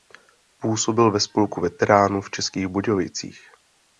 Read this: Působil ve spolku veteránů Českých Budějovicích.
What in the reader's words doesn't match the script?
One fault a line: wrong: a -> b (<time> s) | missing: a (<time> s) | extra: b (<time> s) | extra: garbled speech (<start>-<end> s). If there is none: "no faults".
extra: v (2.2 s)